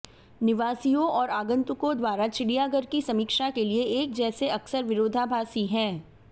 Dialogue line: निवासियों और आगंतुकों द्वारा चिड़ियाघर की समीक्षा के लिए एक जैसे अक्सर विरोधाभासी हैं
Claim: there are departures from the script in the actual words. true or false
false